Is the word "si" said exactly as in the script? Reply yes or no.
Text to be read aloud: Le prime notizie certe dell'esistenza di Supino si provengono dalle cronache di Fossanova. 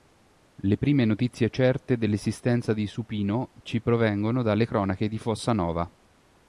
no